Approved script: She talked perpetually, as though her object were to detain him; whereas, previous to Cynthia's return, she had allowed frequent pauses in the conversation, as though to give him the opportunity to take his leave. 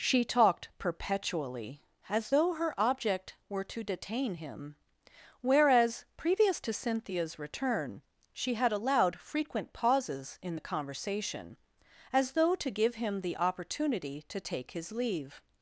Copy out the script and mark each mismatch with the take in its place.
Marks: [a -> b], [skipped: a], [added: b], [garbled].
She talked perpetually, as though her object were to detain him; whereas, previous to Cynthia's return, she had allowed frequent pauses in the conversation, as though to give him the opportunity to take his leave.